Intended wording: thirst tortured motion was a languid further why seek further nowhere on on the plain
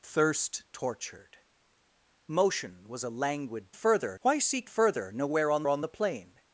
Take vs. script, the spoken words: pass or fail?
pass